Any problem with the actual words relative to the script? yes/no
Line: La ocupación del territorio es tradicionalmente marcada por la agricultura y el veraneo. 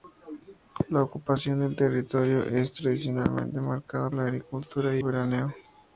yes